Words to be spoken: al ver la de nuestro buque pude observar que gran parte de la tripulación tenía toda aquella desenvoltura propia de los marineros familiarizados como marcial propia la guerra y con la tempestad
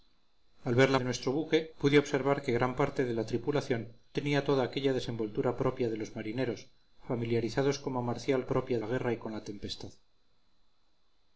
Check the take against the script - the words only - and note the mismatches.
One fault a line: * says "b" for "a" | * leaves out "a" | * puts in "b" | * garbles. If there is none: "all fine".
all fine